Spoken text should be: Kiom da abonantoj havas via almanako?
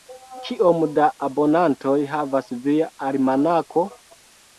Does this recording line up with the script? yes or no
yes